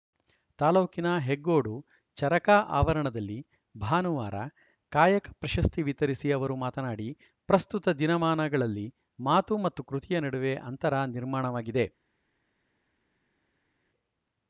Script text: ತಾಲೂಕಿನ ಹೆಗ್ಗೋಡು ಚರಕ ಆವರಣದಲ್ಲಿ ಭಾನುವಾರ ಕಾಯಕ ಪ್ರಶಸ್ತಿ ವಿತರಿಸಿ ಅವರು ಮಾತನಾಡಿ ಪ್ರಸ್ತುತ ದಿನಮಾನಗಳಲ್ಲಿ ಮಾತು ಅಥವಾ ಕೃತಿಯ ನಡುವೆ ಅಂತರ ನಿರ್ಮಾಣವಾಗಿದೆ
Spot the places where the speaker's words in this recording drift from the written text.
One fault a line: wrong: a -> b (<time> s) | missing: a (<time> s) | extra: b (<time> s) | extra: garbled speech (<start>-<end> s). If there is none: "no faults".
wrong: ಅಥವಾ -> ಮತ್ತು (9.6 s)